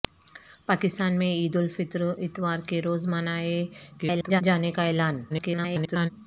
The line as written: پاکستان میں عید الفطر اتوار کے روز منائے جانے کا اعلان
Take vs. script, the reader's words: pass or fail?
fail